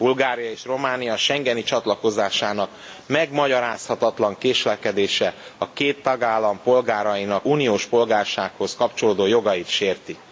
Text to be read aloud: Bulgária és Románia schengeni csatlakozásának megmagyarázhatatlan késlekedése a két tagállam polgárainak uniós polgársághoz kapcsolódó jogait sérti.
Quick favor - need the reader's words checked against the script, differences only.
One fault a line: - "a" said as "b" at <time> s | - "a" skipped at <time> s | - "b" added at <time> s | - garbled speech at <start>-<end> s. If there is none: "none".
none